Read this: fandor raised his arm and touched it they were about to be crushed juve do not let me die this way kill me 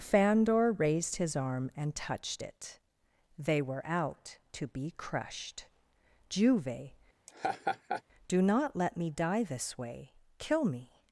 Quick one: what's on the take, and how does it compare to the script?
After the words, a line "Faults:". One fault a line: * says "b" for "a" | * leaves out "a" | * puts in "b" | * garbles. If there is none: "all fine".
fandor raised his arm and touched it they were out to be crushed juve do not let me die this way kill me
Faults:
* says "out" for "about"